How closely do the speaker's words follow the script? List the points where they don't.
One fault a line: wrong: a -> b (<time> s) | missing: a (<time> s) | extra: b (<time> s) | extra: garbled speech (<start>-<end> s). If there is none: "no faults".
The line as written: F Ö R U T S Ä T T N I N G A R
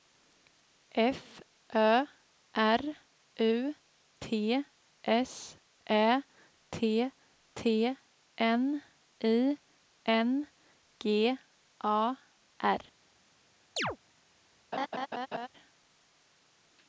no faults